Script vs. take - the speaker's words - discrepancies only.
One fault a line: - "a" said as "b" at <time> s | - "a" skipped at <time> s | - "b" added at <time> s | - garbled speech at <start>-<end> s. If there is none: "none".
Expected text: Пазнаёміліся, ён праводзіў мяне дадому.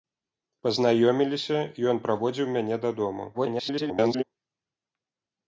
- garbled speech at 3.3-4.2 s